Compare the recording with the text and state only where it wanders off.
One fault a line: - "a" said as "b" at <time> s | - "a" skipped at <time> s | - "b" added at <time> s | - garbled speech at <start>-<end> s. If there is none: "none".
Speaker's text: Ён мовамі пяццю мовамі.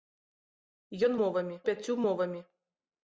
none